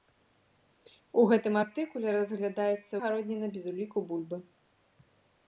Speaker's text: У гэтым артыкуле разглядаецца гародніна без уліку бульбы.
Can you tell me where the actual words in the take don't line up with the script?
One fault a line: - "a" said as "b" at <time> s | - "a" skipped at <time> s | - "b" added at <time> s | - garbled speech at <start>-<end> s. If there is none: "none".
none